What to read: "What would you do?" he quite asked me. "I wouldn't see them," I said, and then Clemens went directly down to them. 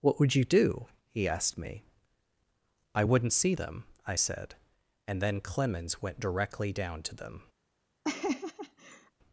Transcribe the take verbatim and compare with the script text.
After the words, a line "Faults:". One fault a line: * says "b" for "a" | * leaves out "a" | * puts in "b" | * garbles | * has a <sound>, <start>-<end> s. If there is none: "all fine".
"What would you do?" he asked me. "I wouldn't see them," I said, and then Clemens went directly down to them.
Faults:
* leaves out "quite"
* has a laugh, 8.0-9.1 s